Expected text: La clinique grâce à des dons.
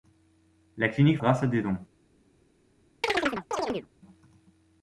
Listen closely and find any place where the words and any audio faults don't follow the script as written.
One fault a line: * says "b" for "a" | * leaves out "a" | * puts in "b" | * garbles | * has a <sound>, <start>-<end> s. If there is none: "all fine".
* has a chirp, 3.0-3.9 s